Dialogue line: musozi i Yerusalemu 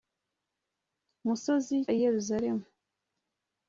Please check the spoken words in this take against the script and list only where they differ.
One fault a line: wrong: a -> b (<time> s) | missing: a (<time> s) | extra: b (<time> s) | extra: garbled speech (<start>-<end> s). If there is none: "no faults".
no faults